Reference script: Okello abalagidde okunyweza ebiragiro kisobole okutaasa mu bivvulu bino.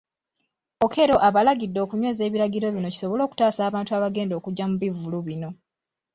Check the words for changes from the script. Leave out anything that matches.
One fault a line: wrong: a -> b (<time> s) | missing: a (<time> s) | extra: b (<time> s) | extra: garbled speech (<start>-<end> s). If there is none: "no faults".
extra: bino (2.8 s)
extra: abantu abagenda okujja (3.7 s)